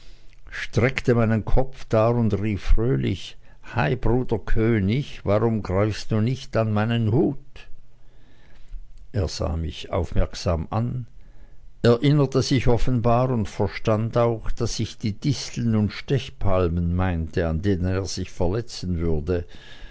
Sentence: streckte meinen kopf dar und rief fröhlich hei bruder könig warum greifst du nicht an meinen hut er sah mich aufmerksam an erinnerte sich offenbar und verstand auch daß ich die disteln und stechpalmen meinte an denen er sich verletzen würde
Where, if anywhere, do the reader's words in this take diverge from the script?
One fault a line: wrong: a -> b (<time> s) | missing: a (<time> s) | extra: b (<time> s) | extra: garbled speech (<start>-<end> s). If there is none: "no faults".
no faults